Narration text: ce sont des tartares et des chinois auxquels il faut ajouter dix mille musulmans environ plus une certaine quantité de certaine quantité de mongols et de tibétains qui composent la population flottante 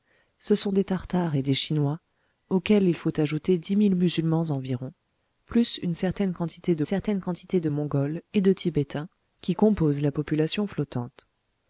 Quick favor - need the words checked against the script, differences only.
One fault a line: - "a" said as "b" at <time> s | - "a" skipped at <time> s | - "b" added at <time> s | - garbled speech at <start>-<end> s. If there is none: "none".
none